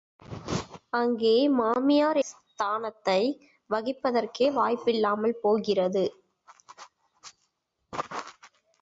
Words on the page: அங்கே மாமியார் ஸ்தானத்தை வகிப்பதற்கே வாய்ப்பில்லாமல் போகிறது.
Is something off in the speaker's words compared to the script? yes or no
no